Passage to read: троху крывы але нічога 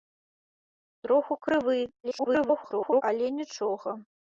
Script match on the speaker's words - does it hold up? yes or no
no